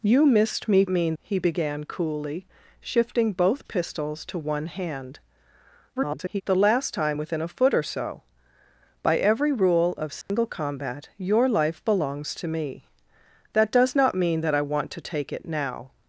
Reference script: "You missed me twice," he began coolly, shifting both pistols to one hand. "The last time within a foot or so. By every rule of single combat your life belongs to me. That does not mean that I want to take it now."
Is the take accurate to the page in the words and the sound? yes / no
no